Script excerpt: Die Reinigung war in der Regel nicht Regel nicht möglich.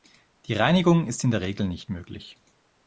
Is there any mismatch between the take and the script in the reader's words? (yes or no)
yes